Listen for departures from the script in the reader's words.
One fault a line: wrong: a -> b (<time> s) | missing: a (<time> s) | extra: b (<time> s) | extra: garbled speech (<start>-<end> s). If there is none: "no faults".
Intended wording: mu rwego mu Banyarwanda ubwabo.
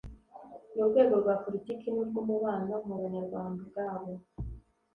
extra: rwa politiki n'urw'umubano (1.2 s)